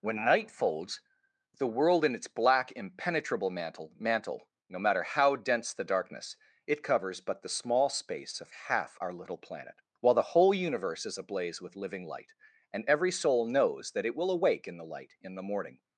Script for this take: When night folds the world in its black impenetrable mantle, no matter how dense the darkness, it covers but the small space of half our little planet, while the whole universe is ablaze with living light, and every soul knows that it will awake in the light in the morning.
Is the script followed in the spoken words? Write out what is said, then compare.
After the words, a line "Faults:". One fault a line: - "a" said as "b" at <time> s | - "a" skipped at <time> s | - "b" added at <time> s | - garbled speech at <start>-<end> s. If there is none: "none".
When night folds the world in its black impenetrable mantle mantle, no matter how dense the darkness, it covers but the small space of half our little planet, while the whole universe is ablaze with living light, and every soul knows that it will awake in the light in the morning.
Faults:
- "mantle" added at 4.0 s